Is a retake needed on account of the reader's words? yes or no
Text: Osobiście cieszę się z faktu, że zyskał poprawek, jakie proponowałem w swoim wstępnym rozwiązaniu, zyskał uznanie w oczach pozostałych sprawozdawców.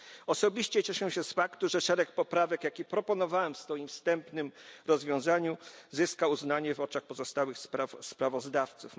yes